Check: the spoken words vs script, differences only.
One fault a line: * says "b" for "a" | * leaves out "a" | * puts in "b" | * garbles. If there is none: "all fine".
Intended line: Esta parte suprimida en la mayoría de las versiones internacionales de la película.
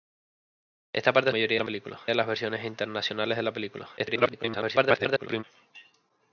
* says "mayoría" for "suprimida"
* says "película" for "mayoría"
* garbles